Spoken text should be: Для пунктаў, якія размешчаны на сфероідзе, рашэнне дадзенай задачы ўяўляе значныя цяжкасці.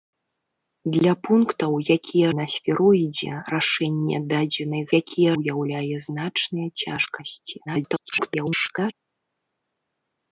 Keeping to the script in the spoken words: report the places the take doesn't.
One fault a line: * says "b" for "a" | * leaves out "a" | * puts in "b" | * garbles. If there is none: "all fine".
* leaves out "размешчаны"
* says "якія" for "задачы"
* garbles